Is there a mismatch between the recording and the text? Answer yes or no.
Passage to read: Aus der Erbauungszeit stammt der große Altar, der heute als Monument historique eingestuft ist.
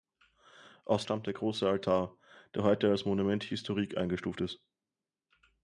yes